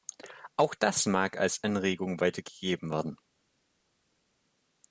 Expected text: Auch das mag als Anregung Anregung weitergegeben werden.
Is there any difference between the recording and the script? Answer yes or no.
yes